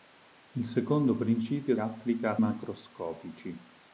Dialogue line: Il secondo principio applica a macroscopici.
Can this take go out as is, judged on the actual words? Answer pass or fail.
pass